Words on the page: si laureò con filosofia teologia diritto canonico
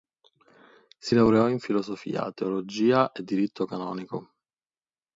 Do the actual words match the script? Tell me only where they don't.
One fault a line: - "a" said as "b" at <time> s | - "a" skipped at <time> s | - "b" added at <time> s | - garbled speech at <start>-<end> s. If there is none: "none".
- "con" said as "in" at 1.5 s
- "e" added at 3.1 s